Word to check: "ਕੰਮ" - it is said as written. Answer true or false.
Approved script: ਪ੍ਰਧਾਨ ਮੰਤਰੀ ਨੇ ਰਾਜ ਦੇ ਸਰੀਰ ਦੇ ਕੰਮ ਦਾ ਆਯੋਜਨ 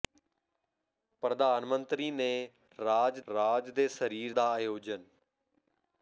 false